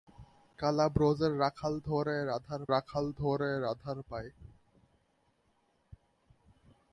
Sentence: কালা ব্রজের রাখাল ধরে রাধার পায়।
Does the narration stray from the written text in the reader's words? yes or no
yes